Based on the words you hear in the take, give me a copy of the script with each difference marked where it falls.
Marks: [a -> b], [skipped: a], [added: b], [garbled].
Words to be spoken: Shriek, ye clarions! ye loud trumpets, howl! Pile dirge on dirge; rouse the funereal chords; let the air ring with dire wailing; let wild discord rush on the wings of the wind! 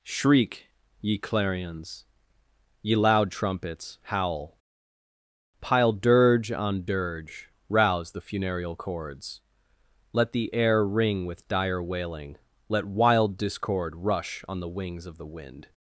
Shriek, ye clarions! ye loud trumpets, howl! Pile dirge on dirge; rouse the funereal chords; let the air ring with dire wailing; let wild discord rush on the wings of the wind!